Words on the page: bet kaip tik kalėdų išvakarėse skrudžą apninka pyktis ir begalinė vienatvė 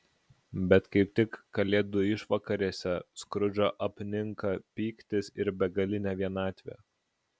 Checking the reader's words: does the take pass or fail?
pass